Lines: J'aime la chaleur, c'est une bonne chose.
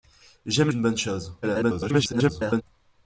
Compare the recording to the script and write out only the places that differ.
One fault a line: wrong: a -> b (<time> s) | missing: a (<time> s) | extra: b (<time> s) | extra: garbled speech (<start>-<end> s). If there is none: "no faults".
missing: la chaleur c'est (0.7 s)
extra: garbled speech (1.4-2.6 s)